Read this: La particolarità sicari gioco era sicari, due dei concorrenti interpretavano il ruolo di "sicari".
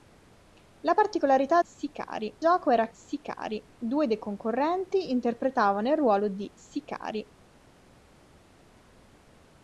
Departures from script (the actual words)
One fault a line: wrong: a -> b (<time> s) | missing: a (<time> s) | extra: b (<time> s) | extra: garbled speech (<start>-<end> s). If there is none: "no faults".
no faults